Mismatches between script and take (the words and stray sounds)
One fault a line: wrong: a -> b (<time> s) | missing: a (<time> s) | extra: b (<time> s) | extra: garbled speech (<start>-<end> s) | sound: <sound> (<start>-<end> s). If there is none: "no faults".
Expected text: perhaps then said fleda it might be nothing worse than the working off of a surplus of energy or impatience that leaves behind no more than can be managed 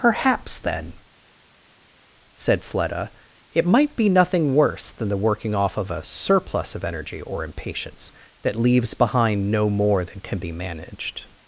no faults